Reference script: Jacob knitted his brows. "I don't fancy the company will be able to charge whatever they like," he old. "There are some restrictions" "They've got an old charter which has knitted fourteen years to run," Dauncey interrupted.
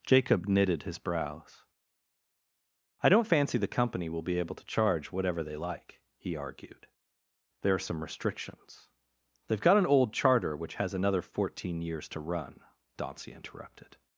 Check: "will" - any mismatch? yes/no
no